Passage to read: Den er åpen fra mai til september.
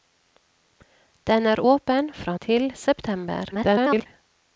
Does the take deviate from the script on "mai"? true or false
true